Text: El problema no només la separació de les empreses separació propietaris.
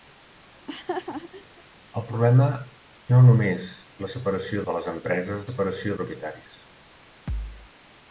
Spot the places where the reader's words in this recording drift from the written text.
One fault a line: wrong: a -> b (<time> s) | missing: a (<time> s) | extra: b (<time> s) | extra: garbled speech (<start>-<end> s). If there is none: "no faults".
no faults